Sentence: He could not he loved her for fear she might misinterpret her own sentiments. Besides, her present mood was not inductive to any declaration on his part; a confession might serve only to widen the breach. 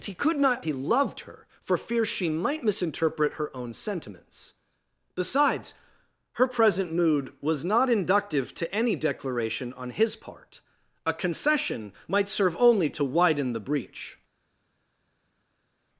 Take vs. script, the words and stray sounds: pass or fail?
pass